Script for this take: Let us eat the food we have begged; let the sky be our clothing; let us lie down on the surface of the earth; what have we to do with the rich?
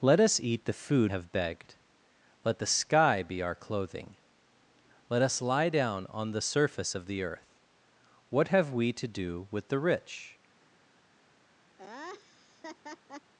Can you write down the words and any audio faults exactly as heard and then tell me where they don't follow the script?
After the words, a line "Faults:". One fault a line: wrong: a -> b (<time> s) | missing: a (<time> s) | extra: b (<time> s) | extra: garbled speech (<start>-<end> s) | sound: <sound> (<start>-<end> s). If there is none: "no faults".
Let us eat the food have begged; let the sky be our clothing; let us lie down on the surface of the earth; what have we to do with the rich?
Faults:
missing: we (1.1 s)
sound: laugh (11.8-13.3 s)